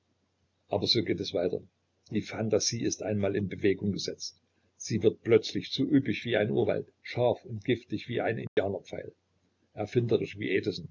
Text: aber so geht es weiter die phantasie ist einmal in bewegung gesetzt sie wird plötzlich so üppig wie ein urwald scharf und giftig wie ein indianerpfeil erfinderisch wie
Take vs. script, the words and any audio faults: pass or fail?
fail